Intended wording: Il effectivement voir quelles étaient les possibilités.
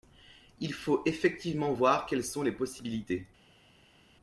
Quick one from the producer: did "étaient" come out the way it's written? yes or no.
no